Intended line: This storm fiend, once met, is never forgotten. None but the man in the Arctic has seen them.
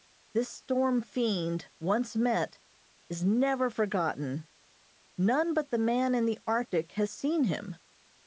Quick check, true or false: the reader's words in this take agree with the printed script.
false